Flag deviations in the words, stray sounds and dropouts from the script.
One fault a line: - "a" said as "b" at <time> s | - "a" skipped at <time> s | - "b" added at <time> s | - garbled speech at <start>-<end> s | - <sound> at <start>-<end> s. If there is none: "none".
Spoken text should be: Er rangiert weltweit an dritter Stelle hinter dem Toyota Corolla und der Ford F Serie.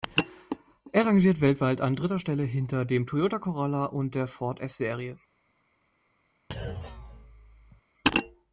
- thud at 6.5-7.8 s